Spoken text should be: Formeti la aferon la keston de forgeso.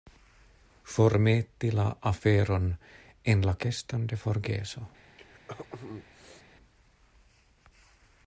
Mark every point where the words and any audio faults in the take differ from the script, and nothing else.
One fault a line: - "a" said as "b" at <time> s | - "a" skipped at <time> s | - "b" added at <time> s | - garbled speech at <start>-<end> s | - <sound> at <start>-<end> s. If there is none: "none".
- "en" added at 3.4 s
- throat clearing at 5.2-6.4 s